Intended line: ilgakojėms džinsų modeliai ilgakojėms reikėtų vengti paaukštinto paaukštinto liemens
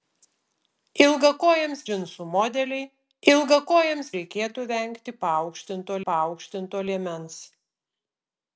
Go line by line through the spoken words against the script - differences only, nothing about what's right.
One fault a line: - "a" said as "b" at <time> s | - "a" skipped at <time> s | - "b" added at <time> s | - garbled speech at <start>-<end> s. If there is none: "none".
none